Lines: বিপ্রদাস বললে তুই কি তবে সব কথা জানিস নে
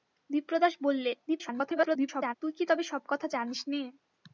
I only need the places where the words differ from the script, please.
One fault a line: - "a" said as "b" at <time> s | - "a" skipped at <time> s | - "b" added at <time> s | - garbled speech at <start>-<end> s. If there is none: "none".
- garbled speech at 1.3-2.3 s